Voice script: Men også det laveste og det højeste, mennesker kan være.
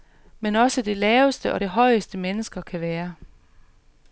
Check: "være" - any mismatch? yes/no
no